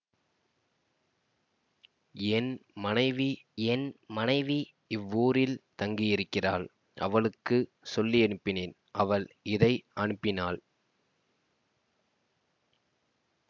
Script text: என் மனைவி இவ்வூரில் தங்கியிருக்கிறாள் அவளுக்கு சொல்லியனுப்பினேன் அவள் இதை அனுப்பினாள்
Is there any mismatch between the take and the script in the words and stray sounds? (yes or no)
yes